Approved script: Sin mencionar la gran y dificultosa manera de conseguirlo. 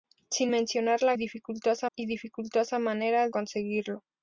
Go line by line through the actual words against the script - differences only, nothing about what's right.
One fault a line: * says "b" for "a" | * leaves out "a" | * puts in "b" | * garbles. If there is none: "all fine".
* says "dificultosa" for "gran"
* leaves out "de"